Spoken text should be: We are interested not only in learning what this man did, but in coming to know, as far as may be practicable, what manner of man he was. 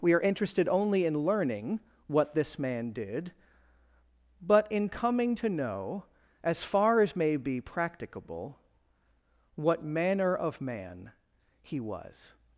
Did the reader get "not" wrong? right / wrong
wrong